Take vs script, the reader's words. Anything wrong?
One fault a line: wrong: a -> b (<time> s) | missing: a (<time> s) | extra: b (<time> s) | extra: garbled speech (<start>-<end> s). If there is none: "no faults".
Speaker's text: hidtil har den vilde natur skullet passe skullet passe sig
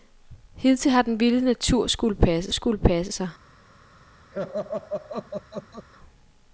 no faults